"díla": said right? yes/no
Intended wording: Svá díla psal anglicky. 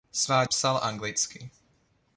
no